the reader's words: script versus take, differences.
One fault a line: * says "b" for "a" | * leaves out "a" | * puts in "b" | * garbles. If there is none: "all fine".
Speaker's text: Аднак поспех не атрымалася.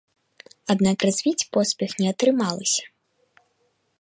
* puts in "развіць"